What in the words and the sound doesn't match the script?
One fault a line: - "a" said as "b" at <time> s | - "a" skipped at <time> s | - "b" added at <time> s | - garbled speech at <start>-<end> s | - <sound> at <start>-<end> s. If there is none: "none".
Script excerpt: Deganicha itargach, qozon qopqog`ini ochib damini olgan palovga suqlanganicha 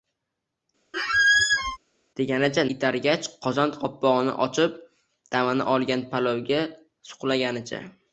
- squeak at 0.9-1.8 s